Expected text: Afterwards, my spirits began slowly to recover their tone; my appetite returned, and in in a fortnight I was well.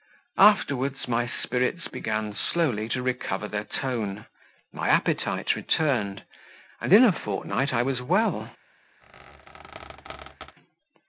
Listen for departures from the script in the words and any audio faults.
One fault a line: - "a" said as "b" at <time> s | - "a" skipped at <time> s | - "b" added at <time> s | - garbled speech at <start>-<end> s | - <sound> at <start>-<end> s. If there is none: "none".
- "in" skipped at 7.0 s
- squeak at 9.0-10.6 s